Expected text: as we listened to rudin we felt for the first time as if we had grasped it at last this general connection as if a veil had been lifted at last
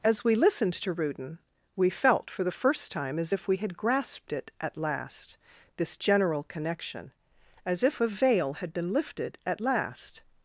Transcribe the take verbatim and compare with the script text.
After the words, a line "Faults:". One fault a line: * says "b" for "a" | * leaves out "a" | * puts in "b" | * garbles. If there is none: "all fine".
as we listened to rudin we felt for the first time as if we had grasped it at last this general connection as if a veil had been lifted at last
Faults:
all fine